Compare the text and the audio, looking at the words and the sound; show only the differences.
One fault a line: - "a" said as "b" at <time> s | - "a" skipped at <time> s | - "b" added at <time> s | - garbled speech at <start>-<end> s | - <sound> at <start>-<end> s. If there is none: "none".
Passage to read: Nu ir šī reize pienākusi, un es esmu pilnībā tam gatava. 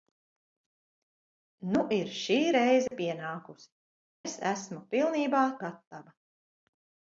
- dropout at 2.9-2.9 s
- "un" skipped at 3.7 s
- "tam" skipped at 5.5 s